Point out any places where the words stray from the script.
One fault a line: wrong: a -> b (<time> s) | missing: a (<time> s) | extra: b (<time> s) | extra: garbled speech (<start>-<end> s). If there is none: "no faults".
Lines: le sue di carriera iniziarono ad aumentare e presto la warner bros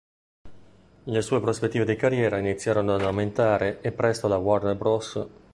extra: prospettive (1.4 s)